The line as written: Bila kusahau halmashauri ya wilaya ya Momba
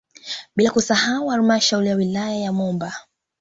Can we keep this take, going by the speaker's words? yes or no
yes